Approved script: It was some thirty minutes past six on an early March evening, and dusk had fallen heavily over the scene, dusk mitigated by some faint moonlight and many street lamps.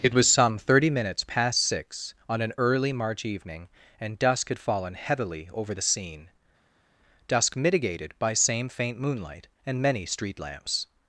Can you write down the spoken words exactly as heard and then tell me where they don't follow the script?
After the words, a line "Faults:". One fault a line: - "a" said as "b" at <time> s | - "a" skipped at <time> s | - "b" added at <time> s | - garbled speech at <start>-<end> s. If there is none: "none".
It was some thirty minutes past six on an early March evening, and dusk had fallen heavily over the scene, dusk mitigated by same faint moonlight and many street lamps.
Faults:
- "some" said as "same" at 8.3 s